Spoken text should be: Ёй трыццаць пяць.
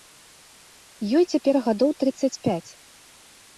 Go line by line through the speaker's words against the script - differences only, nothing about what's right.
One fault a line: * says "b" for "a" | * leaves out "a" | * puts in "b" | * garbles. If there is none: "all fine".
* puts in "цяпер гадоў"